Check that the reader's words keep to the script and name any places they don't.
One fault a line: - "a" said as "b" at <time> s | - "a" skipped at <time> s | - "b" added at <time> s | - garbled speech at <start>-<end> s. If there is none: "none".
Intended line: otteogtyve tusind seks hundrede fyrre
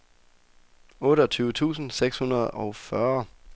- "og" added at 2.5 s